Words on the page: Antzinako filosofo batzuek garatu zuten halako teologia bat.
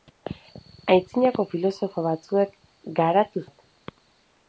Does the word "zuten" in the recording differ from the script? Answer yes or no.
yes